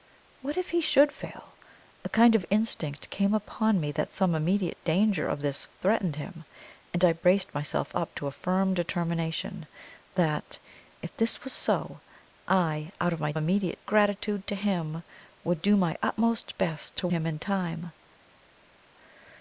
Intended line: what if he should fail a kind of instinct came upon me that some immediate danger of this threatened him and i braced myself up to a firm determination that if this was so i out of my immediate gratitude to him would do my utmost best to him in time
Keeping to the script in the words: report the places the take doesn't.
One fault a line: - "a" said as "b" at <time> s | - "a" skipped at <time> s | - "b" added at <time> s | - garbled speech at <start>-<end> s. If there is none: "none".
none